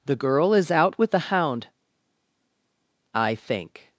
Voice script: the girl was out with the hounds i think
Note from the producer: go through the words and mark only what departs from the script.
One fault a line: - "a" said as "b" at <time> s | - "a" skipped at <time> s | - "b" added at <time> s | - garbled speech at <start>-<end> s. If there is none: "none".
- "was" said as "is" at 0.5 s
- "hounds" said as "hound" at 1.2 s